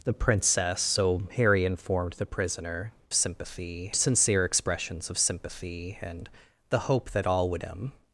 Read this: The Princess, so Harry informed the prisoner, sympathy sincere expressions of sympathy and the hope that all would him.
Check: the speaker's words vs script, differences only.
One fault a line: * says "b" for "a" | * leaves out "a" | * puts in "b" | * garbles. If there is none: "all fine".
all fine